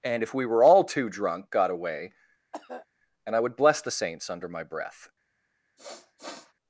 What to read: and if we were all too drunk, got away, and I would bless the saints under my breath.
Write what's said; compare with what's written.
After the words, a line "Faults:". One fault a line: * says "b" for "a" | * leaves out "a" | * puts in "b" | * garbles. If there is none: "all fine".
and if we were all too drunk, got away, and I would bless the saints under my breath.
Faults:
all fine